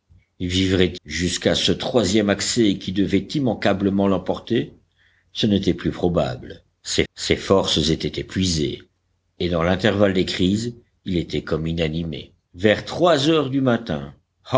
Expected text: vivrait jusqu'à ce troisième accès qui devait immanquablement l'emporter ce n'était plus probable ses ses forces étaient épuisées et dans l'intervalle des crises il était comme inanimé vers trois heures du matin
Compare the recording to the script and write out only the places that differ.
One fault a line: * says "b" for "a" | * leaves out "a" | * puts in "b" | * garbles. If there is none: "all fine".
all fine